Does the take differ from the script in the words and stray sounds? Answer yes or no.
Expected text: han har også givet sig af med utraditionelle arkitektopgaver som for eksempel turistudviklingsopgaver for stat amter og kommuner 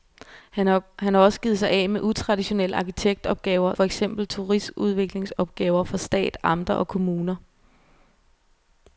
yes